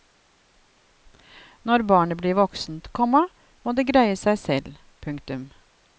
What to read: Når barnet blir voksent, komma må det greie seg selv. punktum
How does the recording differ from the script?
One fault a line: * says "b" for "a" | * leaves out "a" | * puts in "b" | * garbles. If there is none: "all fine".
all fine